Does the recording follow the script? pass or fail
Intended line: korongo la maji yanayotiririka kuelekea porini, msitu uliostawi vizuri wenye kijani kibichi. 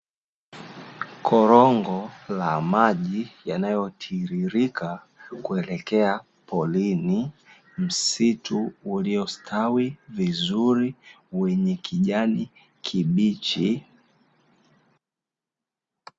pass